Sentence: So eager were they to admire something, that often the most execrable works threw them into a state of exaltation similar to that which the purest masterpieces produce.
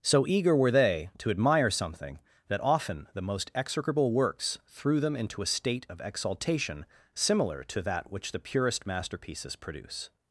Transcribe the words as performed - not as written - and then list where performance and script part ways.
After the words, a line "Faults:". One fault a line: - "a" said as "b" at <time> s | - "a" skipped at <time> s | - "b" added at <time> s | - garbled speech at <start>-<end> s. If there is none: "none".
So eager were they to admire something, that often the most execrable works threw them into a state of exaltation similar to that which the purest masterpieces produce.
Faults:
none